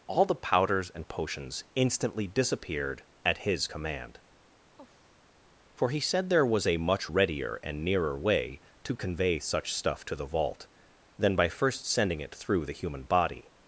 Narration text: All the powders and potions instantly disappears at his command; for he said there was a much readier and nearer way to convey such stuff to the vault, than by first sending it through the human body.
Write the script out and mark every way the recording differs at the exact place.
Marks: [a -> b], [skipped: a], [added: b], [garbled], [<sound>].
All the powders and potions instantly [disappears -> disappeared] at his command; [sigh] for he said there was a much readier and nearer way to convey such stuff to the vault, than by first sending it through the human body.